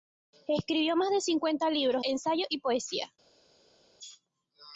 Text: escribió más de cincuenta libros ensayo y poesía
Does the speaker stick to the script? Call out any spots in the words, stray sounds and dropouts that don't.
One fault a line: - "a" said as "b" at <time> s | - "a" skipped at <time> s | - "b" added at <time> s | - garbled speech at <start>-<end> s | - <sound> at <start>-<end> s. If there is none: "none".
none